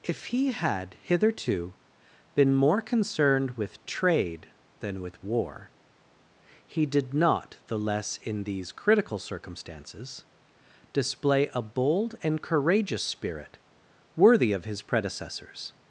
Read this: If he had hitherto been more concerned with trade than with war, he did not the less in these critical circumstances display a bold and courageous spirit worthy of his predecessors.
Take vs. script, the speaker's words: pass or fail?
pass